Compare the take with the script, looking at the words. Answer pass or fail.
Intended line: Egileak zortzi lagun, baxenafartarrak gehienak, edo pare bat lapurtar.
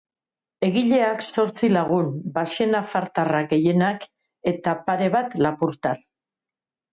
fail